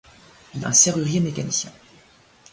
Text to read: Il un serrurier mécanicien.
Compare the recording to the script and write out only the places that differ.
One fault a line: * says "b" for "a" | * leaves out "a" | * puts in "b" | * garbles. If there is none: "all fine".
all fine